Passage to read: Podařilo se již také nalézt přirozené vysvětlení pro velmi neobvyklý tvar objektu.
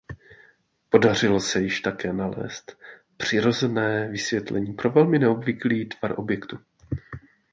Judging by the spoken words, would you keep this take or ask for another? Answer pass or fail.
pass